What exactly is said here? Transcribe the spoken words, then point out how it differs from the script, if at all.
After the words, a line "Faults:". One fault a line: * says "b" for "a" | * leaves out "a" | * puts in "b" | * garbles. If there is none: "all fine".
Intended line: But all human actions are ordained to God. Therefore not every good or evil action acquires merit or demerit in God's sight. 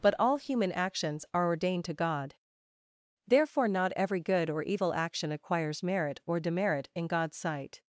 But all human actions are ordained to God. Therefore not every good or evil action acquires merit or demerit in God's sight.
Faults:
all fine